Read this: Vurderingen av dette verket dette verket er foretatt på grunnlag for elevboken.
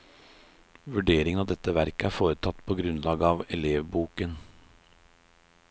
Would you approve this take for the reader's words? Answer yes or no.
no